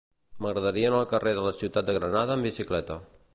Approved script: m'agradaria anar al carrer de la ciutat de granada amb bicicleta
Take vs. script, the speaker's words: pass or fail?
pass